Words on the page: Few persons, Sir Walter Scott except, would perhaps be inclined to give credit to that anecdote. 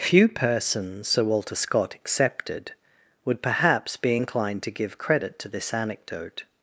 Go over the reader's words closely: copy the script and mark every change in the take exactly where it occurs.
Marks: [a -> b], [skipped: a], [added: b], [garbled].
Few persons, Sir Walter Scott [except, -> excepted] would perhaps be inclined to give credit to [that -> this] anecdote.